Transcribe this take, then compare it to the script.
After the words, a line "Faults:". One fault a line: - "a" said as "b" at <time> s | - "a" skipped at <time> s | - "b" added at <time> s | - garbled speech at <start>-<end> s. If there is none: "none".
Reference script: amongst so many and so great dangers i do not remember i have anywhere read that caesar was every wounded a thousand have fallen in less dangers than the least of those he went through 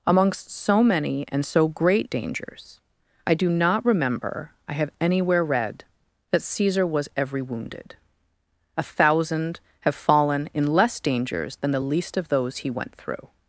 amongst so many and so great dangers i do not remember i have anywhere read that caesar was every wounded a thousand have fallen in less dangers than the least of those he went through
Faults:
none